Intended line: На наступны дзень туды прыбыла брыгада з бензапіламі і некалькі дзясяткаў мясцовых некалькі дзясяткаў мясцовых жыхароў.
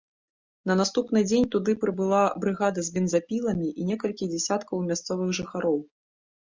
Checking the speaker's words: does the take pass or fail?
fail